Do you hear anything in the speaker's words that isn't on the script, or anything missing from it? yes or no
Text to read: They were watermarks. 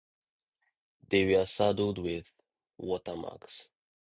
yes